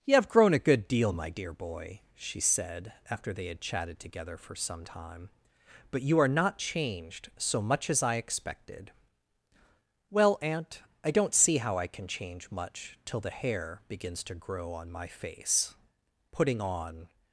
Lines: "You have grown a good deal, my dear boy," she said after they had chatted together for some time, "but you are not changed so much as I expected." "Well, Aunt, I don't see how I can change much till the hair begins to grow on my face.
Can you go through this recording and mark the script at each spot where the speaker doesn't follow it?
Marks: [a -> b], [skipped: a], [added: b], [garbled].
"You have grown a good deal, my dear boy," she said after they had chatted together for some time, "but you are not changed so much as I expected." "Well, Aunt, I don't see how I can change much till the hair begins to grow on my face. [added: Putting on]